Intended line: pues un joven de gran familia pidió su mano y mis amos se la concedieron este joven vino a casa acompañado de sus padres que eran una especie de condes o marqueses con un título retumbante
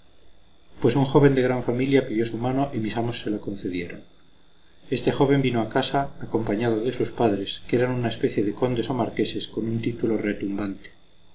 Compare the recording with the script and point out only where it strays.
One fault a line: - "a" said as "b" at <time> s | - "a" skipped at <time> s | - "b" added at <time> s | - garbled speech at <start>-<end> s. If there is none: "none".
none